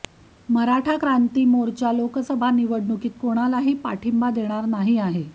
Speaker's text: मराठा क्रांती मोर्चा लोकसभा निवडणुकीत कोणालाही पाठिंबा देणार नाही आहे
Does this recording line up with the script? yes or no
yes